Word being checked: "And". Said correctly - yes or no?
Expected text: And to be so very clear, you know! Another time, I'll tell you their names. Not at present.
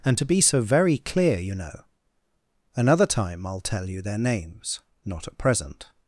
yes